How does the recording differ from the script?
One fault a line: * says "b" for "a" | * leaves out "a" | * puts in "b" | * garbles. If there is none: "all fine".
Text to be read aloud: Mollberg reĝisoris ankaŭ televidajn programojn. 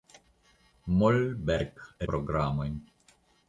* leaves out "reĝisoris ankaŭ televidajn"